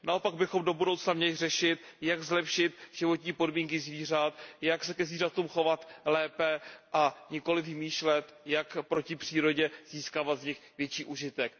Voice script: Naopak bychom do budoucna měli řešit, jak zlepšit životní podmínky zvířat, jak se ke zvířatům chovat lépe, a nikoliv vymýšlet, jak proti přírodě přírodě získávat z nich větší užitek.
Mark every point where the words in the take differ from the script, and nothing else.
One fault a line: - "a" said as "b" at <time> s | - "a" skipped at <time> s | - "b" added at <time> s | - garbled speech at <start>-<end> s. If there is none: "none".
- "přírodě" skipped at 9.7 s